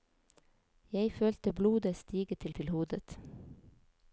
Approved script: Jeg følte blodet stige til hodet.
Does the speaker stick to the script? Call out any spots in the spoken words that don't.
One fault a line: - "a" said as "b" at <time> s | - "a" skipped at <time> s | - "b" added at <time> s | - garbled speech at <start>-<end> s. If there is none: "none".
- "til" added at 2.5 s